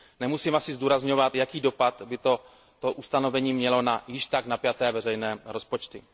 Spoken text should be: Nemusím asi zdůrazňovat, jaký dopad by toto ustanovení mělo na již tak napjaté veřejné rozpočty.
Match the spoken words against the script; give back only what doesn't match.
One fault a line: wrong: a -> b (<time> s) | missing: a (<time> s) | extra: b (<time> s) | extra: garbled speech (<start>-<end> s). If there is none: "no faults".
no faults